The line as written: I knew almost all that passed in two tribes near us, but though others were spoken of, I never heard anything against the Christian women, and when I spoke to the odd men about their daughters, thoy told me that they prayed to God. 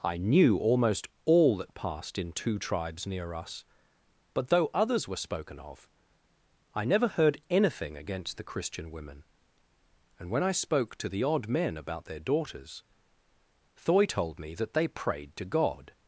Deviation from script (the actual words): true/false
false